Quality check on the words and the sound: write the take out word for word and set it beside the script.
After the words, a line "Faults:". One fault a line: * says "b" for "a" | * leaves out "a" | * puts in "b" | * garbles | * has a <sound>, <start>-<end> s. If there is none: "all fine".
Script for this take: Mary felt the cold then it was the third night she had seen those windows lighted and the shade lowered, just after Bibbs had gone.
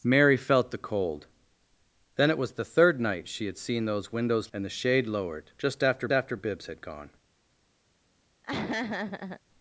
Mary felt the cold then it was the third night she had seen those windows and the shade lowered, just after after Bibbs had gone.
Faults:
* leaves out "lighted"
* puts in "after"
* has a laugh, 8.4-9.4 s